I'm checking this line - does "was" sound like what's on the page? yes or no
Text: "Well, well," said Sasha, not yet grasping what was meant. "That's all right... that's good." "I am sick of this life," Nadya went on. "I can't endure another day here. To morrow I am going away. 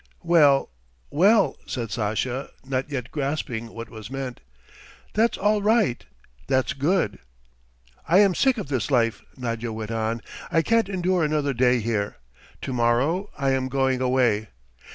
yes